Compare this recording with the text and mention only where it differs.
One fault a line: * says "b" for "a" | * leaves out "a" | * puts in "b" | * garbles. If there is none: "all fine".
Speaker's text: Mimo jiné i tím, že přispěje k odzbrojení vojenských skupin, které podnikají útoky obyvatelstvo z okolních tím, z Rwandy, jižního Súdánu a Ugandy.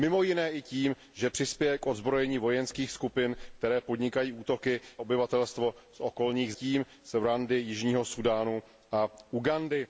all fine